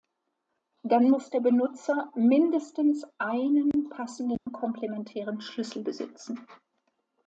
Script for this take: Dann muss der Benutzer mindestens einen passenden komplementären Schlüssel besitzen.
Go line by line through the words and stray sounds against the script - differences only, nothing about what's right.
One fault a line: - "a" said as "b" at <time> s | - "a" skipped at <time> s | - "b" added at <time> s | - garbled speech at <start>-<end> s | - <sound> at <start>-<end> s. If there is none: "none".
- dropout at 4.4-4.5 s